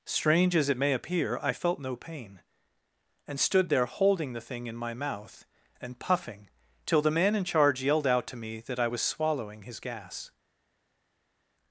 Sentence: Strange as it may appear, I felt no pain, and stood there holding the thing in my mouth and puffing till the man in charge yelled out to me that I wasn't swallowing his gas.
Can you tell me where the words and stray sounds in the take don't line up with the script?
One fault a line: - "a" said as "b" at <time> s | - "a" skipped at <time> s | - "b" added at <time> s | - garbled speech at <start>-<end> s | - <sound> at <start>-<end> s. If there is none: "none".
- "wasn't" said as "was" at 8.9 s